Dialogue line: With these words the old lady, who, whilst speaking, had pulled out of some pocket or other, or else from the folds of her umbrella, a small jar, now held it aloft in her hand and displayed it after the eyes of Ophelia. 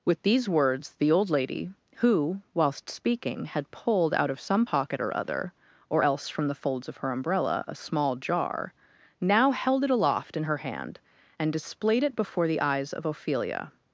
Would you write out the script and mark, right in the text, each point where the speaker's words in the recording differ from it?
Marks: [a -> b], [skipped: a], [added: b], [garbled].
With these words the old lady, who, whilst speaking, had pulled out of some pocket or other, or else from the folds of her umbrella, a small jar, now held it aloft in her hand and displayed it [after -> before] the eyes of Ophelia.